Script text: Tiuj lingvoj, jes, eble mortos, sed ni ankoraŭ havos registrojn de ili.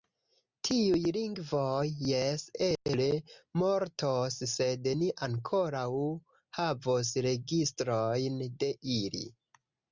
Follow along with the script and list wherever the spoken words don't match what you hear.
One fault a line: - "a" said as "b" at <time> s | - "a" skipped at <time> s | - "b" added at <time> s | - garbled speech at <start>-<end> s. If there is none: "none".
none